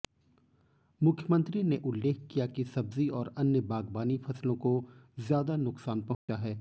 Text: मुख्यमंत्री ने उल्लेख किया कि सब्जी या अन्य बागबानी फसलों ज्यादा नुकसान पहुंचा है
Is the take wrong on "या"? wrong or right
wrong